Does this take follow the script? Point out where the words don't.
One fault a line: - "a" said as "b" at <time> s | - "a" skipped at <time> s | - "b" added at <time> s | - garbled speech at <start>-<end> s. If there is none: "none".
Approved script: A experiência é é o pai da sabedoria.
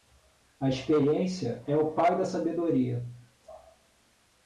- "é" skipped at 1.8 s